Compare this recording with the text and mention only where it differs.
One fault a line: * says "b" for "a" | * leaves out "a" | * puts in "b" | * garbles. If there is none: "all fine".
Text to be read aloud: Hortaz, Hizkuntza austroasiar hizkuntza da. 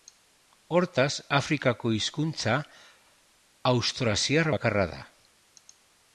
* puts in "Afrikako"
* says "bakarra" for "hizkuntza"